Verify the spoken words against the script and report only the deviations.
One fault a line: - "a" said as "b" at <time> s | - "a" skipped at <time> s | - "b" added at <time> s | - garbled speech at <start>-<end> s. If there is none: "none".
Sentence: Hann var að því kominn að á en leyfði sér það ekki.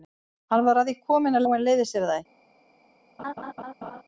none